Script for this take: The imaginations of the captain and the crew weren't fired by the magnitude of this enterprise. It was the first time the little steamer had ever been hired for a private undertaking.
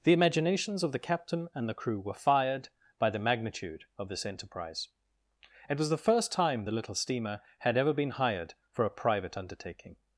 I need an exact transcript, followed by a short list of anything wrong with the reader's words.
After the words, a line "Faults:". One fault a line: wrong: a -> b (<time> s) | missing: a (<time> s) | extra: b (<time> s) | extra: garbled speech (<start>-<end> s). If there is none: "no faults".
The imaginations of the captain and the crew were fired by the magnitude of this enterprise. It was the first time the little steamer had ever been hired for a private undertaking.
Faults:
wrong: weren't -> were (2.0 s)